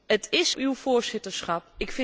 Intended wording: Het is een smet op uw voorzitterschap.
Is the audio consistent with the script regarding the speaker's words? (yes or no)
no